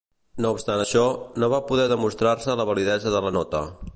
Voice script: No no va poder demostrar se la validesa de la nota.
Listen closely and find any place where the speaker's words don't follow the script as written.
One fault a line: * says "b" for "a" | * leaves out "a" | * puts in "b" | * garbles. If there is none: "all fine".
* puts in "obstant això"